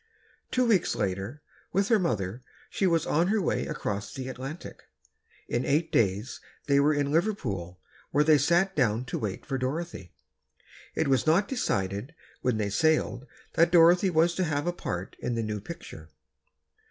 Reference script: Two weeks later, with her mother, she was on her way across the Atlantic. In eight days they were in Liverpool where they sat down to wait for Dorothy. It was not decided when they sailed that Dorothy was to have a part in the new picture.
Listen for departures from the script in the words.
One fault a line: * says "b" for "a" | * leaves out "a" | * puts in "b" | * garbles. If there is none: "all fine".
all fine